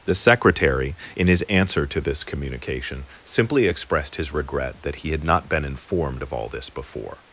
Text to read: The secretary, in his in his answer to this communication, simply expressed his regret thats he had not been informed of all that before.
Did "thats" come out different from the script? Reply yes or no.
yes